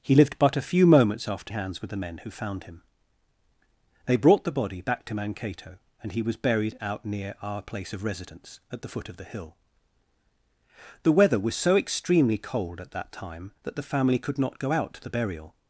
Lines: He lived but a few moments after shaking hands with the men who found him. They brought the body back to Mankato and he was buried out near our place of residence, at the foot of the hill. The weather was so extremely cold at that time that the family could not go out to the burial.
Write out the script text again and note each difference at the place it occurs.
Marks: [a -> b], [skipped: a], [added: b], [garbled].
He lived but a few moments after [skipped: shaking] hands with the men who found him. They brought the body back to Mankato and he was buried out near our place of residence, at the foot of the hill. The weather was so extremely cold at that time that the family could not go out to the burial.